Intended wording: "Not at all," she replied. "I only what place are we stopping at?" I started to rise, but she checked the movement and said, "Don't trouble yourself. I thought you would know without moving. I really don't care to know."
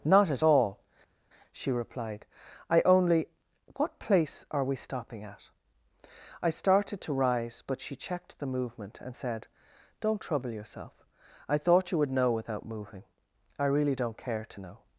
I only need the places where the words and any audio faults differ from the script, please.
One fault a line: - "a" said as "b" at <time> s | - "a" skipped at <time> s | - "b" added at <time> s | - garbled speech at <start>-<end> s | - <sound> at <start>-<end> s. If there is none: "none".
none